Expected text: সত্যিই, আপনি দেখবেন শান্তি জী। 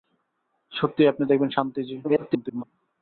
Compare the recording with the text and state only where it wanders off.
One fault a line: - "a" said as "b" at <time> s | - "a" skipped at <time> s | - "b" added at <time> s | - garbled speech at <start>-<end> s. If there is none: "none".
- garbled speech at 2.0-2.6 s